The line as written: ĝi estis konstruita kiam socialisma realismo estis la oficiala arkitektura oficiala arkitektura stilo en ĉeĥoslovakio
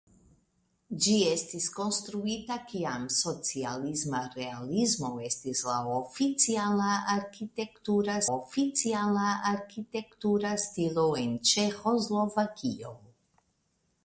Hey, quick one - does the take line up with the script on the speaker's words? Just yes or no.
yes